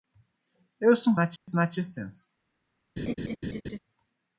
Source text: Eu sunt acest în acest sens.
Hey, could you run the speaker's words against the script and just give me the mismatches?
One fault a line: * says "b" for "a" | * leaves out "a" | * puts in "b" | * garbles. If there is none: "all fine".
all fine